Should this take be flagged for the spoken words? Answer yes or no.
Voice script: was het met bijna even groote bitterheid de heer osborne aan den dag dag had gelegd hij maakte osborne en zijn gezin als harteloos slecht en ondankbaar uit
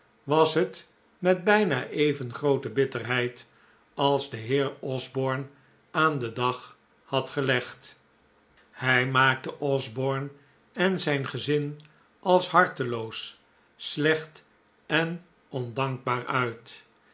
yes